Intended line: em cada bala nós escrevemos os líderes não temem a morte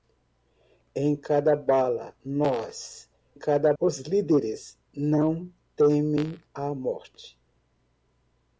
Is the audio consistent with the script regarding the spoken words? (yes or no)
no